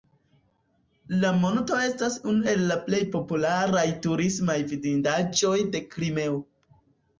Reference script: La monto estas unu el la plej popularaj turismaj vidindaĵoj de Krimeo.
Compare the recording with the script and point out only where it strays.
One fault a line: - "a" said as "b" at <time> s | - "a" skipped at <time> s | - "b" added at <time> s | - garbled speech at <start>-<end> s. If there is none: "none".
none